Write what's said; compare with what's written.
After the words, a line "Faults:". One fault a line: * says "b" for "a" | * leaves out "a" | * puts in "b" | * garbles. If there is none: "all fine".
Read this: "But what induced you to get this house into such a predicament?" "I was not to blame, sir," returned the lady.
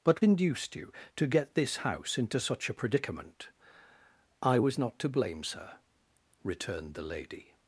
"But induced you to get this house into such a predicament?" "I was not to blame, sir," returned the lady.
Faults:
* leaves out "what"